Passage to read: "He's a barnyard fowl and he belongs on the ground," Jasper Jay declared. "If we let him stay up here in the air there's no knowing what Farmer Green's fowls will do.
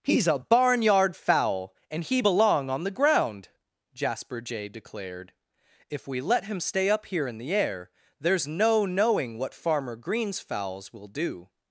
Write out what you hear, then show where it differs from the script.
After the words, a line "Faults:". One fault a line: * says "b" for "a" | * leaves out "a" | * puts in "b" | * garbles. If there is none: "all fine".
"He's a barnyard fowl and he belong on the ground," Jasper Jay declared. "If we let him stay up here in the air there's no knowing what Farmer Green's fowls will do.
Faults:
* says "belong" for "belongs"